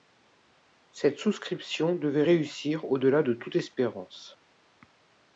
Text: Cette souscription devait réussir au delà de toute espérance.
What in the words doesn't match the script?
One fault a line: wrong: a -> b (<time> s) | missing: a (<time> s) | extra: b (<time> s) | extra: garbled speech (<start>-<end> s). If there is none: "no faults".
no faults